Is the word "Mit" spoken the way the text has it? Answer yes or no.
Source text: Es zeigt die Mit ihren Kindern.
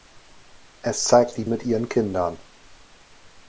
yes